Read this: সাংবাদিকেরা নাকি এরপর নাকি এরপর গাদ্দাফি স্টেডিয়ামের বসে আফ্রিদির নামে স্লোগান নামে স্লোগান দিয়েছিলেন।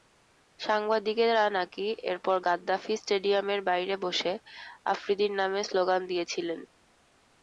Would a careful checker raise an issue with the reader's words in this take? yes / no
yes